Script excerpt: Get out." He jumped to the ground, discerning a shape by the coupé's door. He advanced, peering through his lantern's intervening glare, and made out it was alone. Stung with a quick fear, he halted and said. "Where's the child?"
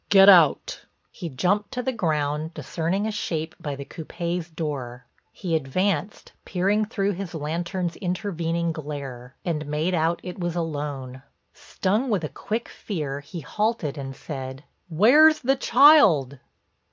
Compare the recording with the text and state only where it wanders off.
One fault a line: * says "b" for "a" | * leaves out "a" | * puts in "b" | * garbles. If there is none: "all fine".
all fine